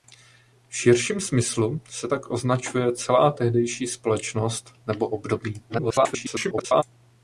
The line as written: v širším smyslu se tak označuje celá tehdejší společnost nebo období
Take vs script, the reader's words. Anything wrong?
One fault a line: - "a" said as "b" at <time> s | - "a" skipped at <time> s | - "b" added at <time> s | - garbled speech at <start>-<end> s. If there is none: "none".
- garbled speech at 5.7-6.8 s